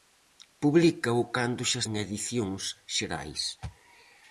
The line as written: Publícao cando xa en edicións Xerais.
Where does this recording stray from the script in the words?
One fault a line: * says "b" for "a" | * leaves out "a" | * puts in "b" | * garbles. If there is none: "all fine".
all fine